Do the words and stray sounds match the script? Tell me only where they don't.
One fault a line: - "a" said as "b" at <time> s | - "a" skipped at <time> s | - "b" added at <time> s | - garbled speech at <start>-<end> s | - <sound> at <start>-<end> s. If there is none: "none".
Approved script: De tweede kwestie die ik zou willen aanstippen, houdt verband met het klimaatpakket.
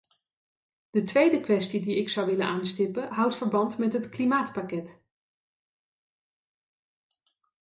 none